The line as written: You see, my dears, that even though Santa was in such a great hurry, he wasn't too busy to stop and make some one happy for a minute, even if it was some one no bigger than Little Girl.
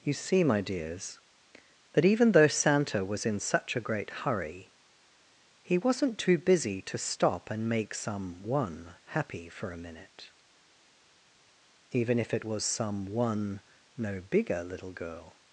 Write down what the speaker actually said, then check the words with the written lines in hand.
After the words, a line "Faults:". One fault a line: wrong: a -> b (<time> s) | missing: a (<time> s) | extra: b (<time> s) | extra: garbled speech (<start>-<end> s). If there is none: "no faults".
You see, my dears, that even though Santa was in such a great hurry, he wasn't too busy to stop and make some one happy for a minute, even if it was some one no bigger Little Girl.
Faults:
missing: than (14.6 s)